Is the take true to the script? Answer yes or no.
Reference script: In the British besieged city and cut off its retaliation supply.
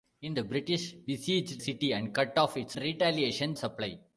yes